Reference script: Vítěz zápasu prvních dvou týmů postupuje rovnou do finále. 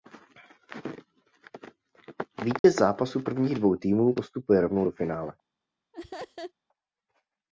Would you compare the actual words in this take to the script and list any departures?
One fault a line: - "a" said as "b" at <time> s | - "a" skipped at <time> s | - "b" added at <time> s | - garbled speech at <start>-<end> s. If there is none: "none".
none